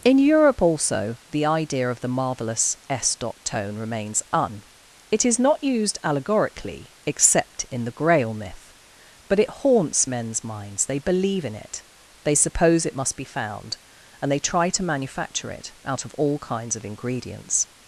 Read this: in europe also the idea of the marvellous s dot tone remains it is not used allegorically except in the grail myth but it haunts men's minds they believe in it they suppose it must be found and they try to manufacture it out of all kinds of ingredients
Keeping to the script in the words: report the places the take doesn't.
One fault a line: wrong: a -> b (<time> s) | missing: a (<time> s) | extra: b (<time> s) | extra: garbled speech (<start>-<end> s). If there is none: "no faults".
extra: un (4.3 s)